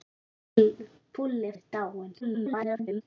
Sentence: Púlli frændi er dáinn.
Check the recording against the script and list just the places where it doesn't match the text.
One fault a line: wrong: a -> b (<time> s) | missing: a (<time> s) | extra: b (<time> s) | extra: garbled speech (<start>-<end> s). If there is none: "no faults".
missing: frændi (1.5 s)
extra: garbled speech (2.2-3.0 s)